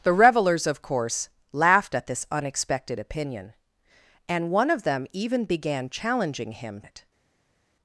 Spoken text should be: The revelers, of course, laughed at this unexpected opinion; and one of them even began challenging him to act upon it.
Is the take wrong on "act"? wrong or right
wrong